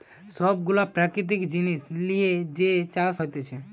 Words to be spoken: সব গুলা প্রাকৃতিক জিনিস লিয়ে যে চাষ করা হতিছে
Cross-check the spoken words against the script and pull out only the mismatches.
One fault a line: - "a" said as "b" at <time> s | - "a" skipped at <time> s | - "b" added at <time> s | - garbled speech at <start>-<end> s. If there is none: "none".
- "করা" skipped at 3.1 s